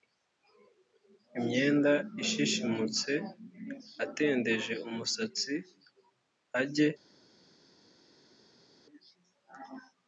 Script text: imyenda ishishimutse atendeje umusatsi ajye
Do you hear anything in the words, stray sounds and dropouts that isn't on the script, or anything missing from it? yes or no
no